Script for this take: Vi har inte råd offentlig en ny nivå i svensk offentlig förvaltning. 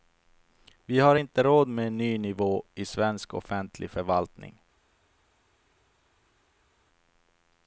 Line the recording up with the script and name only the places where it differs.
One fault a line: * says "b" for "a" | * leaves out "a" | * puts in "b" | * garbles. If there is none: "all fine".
* says "med" for "offentlig"